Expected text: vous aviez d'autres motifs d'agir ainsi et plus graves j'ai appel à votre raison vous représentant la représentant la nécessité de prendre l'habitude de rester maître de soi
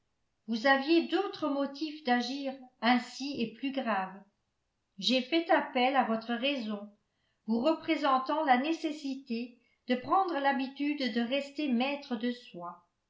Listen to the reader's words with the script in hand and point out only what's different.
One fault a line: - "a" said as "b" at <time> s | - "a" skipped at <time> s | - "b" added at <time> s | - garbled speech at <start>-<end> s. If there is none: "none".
- "fait" added at 5.2 s
- "représentant la" skipped at 8.6 s